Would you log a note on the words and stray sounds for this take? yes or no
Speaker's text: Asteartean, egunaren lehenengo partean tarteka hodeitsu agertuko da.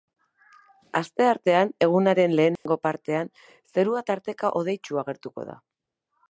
yes